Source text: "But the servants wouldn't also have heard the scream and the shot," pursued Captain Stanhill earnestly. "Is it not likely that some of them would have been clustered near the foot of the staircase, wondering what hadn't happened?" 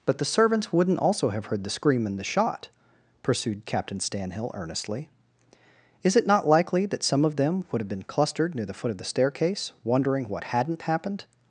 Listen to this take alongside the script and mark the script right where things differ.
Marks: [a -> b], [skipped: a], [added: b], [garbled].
"But the servants wouldn't also have heard the scream and the shot," pursued Captain Stanhill earnestly. "Is it not likely that some of them would have been clustered near the foot of the staircase, wondering what hadn't happened?"